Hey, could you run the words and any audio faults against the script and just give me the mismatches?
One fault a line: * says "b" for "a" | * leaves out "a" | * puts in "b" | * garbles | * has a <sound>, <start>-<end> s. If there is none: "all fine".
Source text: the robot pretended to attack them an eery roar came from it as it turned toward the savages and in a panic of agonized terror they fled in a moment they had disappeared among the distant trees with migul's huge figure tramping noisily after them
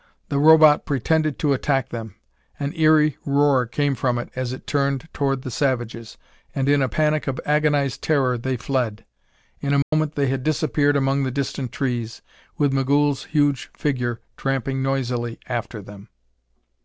* has a dropout, 9.8-9.9 s